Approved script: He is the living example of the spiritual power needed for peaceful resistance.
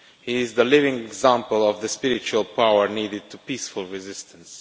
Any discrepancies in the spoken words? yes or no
no